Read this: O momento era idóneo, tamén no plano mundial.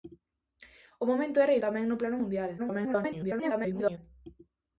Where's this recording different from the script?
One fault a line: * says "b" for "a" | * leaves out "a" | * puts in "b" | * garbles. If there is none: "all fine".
* leaves out "idóneo"
* garbles